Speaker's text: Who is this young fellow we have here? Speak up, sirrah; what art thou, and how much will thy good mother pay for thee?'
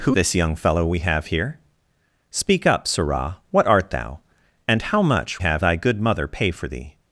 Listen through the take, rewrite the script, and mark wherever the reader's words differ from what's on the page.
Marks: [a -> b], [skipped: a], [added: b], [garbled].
Who [skipped: is] this young fellow we have here? Speak up, sirrah; what art thou, and how much [will -> have] thy good mother pay for thee?'